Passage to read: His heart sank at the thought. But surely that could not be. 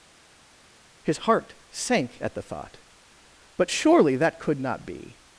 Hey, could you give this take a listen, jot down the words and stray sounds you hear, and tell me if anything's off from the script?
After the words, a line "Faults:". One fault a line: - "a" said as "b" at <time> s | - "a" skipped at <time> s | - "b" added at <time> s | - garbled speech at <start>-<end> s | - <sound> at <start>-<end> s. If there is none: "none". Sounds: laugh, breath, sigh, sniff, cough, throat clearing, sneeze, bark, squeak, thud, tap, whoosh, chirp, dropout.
His heart sank at the thought. But surely that could not be.
Faults:
none